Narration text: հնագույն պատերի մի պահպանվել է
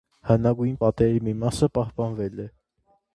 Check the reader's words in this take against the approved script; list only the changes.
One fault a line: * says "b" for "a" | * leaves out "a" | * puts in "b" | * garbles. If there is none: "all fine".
* puts in "մասը"